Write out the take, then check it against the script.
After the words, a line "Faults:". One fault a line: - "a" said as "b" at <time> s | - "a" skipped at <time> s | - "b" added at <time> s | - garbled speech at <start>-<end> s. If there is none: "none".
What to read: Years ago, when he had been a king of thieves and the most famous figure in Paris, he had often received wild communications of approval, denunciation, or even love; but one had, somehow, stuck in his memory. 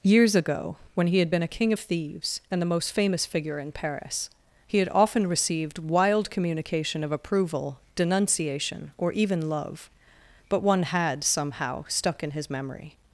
Years ago, when he had been a king of thieves and the most famous figure in Paris, he had often received wild communication of approval, denunciation, or even love; but one had, somehow, stuck in his memory.
Faults:
- "communications" said as "communication" at 6.3 s